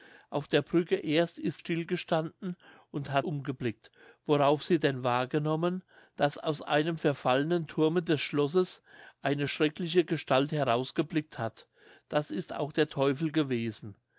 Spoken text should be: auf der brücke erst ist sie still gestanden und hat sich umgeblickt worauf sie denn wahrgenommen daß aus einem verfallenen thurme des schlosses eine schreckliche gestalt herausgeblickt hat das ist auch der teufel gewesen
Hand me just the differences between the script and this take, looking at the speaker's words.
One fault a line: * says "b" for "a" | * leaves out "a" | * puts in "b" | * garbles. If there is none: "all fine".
* leaves out "sie"
* leaves out "sich"